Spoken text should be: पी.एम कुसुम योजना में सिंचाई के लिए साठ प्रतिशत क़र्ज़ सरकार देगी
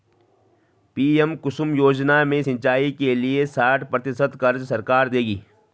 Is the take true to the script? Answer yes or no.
yes